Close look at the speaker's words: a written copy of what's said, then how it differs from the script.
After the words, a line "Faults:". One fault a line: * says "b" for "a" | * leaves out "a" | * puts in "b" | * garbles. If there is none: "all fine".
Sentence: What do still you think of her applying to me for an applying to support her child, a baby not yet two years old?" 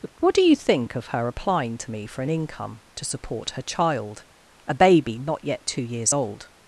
What do you think of her applying to me for an income to support her child, a baby not yet two years old?"
Faults:
* leaves out "still"
* says "income" for "applying"